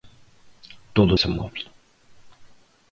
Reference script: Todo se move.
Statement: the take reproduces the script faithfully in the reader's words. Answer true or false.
true